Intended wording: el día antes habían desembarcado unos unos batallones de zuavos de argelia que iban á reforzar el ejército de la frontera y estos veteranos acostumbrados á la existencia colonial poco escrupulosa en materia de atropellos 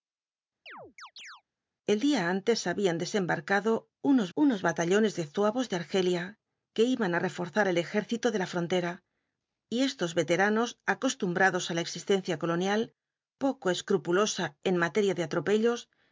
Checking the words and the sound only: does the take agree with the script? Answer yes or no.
no